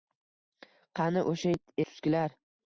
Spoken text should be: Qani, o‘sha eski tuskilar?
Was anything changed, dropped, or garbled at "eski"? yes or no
yes